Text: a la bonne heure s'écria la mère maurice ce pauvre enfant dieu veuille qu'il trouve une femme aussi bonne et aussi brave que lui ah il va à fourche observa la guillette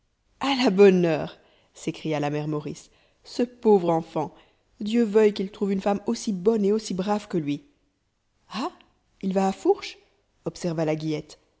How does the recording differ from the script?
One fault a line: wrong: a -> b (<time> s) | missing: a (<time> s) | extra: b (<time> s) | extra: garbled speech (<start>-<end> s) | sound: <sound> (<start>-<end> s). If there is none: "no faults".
no faults